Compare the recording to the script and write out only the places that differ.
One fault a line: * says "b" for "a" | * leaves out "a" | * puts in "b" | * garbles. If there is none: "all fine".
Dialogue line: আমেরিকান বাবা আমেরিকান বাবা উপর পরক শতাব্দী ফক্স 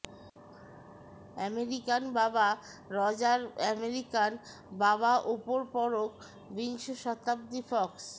* puts in "রজার"
* puts in "বিংশ"